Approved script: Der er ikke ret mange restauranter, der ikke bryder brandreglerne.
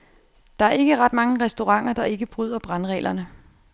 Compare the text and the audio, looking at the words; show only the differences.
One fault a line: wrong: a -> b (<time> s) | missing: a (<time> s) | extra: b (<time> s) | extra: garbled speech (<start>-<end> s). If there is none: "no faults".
no faults